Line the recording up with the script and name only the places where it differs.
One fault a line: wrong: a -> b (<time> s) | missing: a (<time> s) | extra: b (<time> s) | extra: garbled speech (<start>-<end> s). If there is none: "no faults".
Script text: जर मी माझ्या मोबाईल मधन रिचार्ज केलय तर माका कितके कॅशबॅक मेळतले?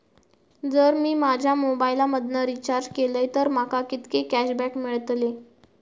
no faults